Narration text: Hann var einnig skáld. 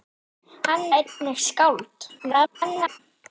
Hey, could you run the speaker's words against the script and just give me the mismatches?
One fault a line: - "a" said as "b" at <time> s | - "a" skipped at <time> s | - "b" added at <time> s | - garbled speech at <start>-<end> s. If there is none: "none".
- "var" skipped at 0.9 s
- garbled speech at 2.2-3.0 s